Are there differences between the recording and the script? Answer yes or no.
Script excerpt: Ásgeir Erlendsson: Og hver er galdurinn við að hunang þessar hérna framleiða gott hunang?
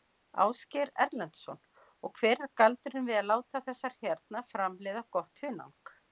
yes